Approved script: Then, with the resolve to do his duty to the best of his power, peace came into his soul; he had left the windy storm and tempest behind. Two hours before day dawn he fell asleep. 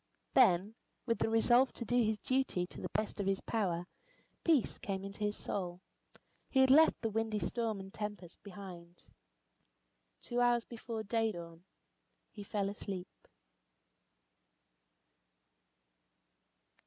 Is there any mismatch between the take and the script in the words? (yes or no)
no